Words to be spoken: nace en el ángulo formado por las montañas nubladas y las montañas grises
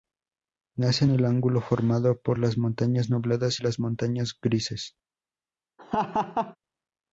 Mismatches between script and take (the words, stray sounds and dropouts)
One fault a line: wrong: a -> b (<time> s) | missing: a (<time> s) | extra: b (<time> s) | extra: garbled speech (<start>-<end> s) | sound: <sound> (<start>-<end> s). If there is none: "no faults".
sound: laugh (5.8-6.6 s)